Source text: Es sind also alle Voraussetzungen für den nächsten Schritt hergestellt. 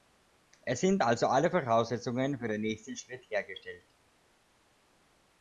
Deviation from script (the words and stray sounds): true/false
false